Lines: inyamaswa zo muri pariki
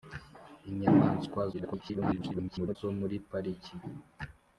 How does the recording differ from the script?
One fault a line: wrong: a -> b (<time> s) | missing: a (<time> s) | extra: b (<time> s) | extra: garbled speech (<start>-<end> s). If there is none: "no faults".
extra: garbled speech (1.5-2.8 s)